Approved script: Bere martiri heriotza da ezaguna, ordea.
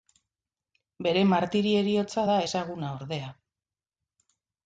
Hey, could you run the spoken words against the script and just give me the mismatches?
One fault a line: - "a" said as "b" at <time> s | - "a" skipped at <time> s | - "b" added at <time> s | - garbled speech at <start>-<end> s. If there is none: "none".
none